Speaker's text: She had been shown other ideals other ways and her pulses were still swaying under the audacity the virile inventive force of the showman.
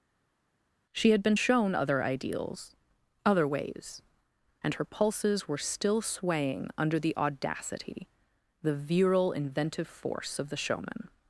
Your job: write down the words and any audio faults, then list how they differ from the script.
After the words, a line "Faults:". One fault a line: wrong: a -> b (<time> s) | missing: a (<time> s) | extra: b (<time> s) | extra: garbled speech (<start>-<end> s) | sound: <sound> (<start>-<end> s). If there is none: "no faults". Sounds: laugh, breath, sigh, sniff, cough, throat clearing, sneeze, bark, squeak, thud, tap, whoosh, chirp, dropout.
She had been shown other ideals other ways and her pulses were still swaying under the audacity the virile inventive force of the showman.
Faults:
no faults